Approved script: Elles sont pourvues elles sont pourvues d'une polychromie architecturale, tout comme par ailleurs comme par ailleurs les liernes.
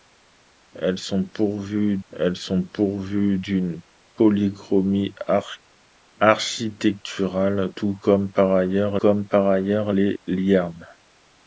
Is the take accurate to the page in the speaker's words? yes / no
yes